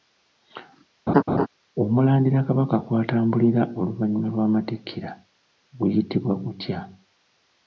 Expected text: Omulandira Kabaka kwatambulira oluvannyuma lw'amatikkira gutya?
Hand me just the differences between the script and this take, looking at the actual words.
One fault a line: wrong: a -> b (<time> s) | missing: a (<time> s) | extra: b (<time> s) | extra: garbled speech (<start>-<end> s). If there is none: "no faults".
extra: guyitibwa (5.8 s)